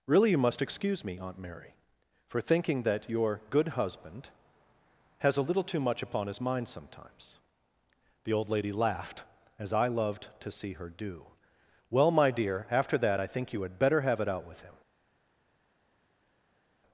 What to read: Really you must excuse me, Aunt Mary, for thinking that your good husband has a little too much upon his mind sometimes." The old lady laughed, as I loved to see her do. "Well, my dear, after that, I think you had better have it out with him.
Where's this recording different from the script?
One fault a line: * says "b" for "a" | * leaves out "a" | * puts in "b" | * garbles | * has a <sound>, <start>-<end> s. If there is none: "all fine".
all fine